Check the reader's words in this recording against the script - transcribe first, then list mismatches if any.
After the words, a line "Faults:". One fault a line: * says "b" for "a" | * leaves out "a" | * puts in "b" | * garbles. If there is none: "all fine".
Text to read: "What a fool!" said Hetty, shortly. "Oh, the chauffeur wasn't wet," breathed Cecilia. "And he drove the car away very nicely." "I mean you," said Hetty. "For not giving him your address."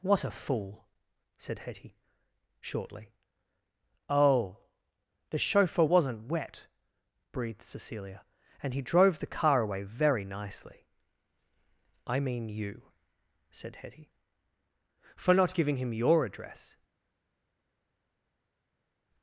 "What a fool!" said Hetty, shortly. "Oh, the chauffeur wasn't wet," breathed Cecilia. "And he drove the car away very nicely." "I mean you," said Hetty. "For not giving him your address."
Faults:
all fine